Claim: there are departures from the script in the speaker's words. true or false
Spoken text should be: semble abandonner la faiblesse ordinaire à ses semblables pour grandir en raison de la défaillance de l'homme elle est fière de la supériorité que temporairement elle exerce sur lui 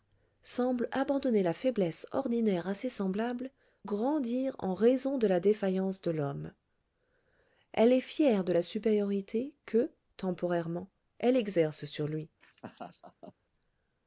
true